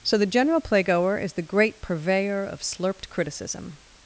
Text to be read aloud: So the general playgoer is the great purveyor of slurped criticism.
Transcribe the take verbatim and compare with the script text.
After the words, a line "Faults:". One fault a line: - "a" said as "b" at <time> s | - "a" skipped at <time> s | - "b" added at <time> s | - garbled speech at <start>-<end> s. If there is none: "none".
So the general playgoer is the great purveyor of slurped criticism.
Faults:
none